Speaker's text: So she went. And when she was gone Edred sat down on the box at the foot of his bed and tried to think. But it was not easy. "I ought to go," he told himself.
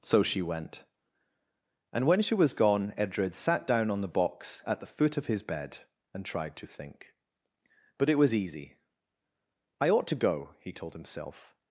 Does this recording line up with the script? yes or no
no